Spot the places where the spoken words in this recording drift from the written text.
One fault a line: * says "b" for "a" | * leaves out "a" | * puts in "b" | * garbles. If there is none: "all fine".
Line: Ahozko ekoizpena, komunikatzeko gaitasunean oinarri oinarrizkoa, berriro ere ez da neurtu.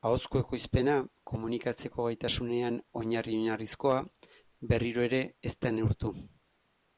all fine